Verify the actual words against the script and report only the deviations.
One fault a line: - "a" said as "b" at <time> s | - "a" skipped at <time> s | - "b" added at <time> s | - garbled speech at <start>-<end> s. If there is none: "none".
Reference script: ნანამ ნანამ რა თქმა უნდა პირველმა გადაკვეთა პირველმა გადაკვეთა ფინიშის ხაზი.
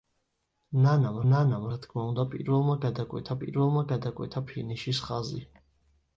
none